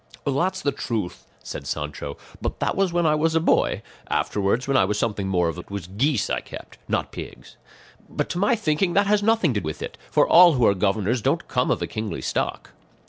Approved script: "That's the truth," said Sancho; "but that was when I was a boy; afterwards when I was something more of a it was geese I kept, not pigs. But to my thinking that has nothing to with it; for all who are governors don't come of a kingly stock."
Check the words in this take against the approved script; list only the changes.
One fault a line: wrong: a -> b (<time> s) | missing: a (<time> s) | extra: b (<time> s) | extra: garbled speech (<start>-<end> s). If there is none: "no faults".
no faults